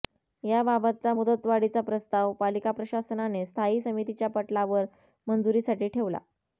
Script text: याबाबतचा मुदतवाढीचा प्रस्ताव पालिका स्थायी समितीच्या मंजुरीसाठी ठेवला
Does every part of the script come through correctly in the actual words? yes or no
no